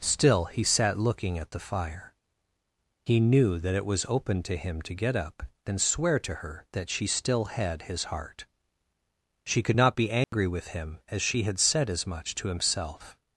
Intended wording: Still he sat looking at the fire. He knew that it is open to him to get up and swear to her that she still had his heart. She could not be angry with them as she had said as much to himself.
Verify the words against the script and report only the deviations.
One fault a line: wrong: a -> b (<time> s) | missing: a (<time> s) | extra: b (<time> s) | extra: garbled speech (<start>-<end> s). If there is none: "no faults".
wrong: is -> was (3.9 s)
wrong: them -> him (10.7 s)